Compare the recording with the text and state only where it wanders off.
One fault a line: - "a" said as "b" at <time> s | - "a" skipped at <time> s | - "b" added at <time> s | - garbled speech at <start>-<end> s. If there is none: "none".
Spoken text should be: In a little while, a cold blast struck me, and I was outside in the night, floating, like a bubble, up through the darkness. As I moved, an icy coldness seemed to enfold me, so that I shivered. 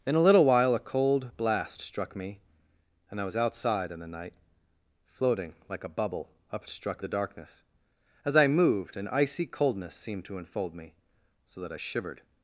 - "through" said as "struck" at 6.7 s